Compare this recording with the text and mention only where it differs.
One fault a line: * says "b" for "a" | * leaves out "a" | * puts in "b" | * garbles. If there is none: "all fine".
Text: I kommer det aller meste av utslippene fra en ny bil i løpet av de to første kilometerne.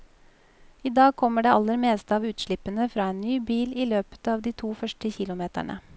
* puts in "dag"